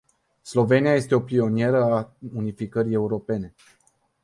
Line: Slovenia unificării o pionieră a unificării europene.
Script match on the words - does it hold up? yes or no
no